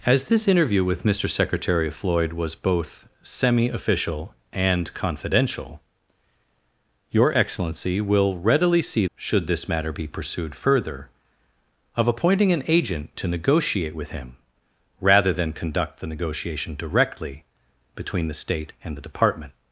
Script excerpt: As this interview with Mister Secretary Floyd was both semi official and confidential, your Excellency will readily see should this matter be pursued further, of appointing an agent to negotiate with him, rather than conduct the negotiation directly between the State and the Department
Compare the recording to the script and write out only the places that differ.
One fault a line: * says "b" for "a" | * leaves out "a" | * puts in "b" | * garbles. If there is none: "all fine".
all fine